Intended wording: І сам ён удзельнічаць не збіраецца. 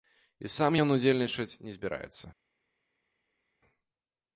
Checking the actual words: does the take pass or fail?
pass